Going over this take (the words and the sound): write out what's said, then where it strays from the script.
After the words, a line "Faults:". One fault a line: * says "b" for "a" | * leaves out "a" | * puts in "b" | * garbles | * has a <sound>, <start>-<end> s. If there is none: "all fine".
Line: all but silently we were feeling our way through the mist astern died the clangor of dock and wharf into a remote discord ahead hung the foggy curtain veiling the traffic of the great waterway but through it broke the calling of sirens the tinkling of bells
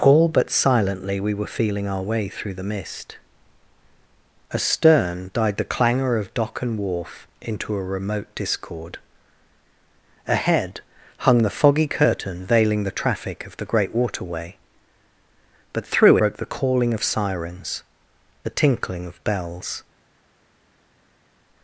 all but silently we were feeling our way through the mist astern died the clangor of dock and wharf into a remote discord ahead hung the foggy curtain veiling the traffic of the great waterway but through broke the calling of sirens the tinkling of bells
Faults:
* leaves out "it"